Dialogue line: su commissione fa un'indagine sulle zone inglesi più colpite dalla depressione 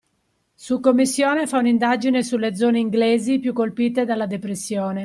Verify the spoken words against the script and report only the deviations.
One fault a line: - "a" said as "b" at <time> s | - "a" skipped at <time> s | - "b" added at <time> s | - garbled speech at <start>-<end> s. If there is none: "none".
none